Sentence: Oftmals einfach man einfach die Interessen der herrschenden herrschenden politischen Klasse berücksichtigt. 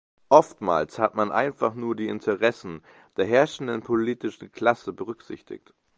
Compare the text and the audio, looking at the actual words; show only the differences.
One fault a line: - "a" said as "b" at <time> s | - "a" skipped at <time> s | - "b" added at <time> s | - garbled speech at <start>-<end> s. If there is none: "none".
- "einfach" said as "hat" at 1.0 s
- "nur" added at 1.7 s
- "herrschenden" skipped at 3.8 s